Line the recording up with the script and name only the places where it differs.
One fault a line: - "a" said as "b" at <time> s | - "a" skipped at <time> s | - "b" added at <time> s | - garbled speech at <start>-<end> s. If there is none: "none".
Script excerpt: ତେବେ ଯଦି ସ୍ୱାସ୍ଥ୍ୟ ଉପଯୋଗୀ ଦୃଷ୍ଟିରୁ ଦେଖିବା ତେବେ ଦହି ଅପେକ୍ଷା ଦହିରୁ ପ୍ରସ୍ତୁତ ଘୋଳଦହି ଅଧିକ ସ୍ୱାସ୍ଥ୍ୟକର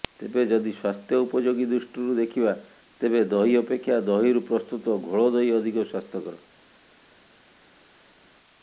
none